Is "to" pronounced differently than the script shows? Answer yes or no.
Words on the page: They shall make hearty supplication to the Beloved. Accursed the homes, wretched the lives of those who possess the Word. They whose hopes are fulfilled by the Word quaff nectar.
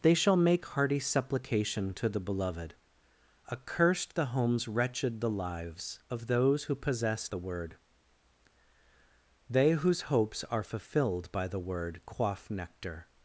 no